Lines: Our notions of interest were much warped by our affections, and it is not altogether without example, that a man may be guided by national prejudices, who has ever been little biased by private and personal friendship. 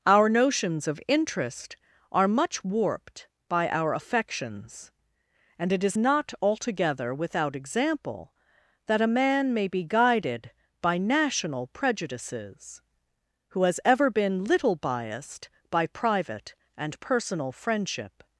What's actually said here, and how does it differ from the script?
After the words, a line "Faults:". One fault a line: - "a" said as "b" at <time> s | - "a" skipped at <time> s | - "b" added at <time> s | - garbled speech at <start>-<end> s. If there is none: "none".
Our notions of interest are much warped by our affections, and it is not altogether without example, that a man may be guided by national prejudices, who has ever been little biased by private and personal friendship.
Faults:
- "were" said as "are" at 2.1 s